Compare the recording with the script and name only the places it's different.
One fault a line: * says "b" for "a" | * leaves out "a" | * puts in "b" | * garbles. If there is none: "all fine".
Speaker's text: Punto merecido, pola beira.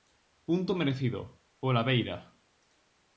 all fine